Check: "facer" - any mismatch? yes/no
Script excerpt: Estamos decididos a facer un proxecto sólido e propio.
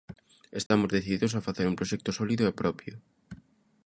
no